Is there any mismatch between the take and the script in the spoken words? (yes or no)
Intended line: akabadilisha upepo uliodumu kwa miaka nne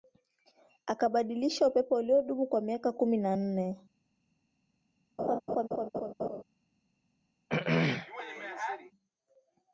yes